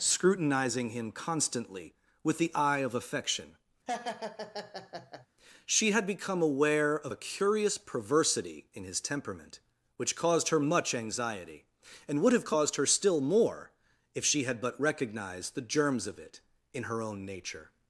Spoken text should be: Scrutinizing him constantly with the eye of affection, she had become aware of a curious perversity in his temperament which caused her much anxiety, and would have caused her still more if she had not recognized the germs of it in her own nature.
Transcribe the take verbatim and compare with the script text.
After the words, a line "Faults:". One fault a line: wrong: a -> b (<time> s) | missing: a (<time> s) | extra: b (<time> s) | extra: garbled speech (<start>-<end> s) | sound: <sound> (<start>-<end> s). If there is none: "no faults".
Scrutinizing him constantly with the eye of affection, she had become aware of a curious perversity in his temperament which caused her much anxiety, and would have caused her still more if she had but recognized the germs of it in her own nature.
Faults:
sound: laugh (3.9-5.3 s)
wrong: not -> but (14.6 s)